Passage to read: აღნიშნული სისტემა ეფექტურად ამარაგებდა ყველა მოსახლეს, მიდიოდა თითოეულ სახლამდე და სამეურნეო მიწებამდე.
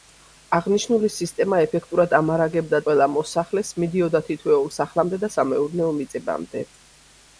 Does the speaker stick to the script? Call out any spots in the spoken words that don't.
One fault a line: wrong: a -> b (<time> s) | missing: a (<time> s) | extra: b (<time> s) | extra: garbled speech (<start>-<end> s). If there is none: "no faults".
no faults